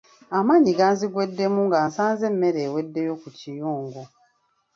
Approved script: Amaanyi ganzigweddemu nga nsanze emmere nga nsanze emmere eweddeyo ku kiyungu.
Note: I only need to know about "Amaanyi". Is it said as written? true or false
true